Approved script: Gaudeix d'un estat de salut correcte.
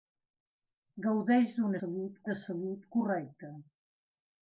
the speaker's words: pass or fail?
fail